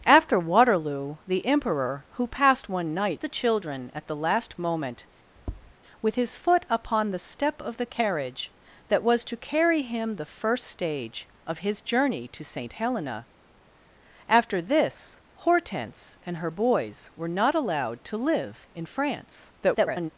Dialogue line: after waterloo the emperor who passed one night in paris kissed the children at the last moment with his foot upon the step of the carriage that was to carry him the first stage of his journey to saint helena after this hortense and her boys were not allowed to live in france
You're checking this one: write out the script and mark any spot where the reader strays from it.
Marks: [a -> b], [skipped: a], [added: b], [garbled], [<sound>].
after waterloo the emperor who passed one night [skipped: in paris kissed] the children at the last moment [tap] with his foot upon the step of the carriage that was to carry him the first stage of his journey to saint helena after this hortense and her boys were not allowed to live in france [garbled]